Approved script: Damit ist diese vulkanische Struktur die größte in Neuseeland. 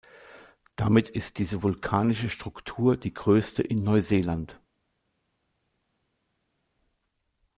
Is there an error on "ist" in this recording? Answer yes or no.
no